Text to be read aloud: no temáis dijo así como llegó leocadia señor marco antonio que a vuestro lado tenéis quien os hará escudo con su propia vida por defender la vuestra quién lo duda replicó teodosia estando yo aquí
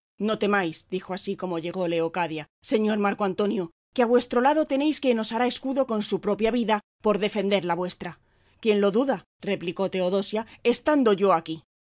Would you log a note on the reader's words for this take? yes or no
no